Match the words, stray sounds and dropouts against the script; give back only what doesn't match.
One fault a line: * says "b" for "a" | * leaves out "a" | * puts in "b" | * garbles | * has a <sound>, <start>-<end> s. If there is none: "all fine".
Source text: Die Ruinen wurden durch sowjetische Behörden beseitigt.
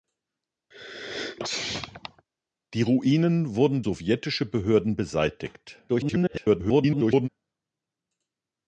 * has a sneeze, 0.7-2.3 s
* leaves out "durch"
* garbles